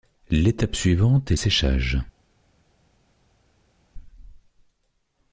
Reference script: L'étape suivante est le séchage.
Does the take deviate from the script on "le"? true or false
true